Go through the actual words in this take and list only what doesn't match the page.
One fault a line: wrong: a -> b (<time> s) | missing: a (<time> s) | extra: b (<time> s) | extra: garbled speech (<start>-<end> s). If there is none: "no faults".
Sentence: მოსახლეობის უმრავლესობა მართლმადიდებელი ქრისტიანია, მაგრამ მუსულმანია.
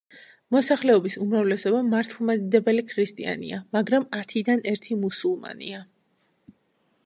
extra: ათიდან ერთი (4.2 s)